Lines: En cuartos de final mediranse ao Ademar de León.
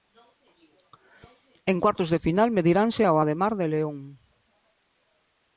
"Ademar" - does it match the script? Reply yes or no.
yes